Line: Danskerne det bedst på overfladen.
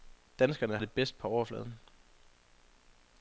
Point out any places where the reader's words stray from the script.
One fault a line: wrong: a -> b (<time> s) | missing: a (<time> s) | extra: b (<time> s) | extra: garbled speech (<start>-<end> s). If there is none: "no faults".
no faults